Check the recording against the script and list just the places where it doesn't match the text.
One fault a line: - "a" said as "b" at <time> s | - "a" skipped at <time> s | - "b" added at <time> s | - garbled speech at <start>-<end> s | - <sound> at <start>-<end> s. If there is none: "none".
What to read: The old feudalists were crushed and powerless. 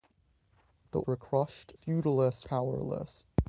- "old feudalists" skipped at 1.0 s
- "and" said as "feudalists" at 1.8 s